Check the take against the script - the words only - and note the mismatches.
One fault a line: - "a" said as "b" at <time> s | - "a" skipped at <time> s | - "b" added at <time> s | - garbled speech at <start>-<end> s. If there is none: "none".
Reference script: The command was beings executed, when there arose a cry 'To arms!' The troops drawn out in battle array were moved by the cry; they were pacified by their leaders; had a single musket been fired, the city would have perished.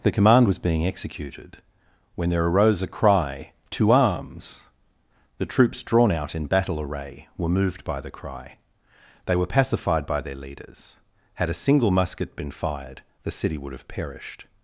- "beings" said as "being" at 0.6 s